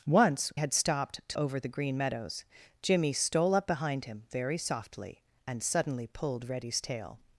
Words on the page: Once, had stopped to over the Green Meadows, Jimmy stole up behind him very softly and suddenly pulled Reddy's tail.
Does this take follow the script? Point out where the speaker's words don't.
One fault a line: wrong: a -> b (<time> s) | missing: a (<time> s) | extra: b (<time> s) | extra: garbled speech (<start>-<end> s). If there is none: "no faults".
no faults